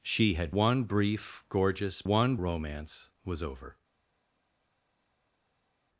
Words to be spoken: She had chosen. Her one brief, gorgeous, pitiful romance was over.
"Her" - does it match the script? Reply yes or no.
no